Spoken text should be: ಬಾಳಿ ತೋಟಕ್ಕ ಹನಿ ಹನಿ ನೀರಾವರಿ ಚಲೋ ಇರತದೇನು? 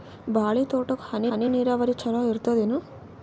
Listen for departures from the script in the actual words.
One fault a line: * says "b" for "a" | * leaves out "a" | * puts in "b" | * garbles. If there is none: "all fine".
all fine